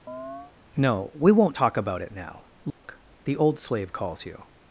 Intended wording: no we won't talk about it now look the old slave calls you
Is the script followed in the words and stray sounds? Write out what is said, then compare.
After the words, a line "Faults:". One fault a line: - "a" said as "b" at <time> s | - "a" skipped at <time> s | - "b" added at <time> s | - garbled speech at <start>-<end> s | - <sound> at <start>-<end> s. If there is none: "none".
no we won't talk about it now look the old slave calls you
Faults:
- chirp at 0.1-0.5 s
- dropout at 2.7-2.8 s